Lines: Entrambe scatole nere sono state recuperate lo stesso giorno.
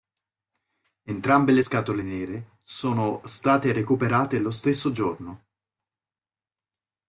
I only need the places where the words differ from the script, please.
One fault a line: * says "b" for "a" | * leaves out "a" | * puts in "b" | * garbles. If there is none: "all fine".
* puts in "le"